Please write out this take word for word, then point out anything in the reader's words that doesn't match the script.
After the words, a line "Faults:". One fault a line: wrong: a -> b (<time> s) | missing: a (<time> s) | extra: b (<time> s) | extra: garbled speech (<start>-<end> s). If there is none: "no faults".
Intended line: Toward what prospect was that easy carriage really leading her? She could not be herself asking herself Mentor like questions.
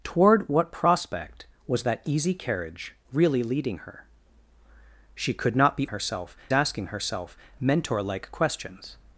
Toward what prospect was that easy carriage really leading her? She could not be herself asking herself Mentor like questions.
Faults:
no faults